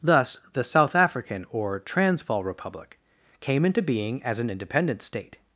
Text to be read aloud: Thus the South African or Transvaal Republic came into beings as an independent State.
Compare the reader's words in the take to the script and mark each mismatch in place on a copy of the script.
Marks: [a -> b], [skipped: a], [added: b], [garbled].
Thus the South African or Transvaal Republic came into [beings -> being] as an independent State.